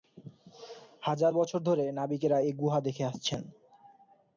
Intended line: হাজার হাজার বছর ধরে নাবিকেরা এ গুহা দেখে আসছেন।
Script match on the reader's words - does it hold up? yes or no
no